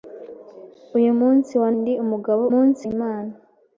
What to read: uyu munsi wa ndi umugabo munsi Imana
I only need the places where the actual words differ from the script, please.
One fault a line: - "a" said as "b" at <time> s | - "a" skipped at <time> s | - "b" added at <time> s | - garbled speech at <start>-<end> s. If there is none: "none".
none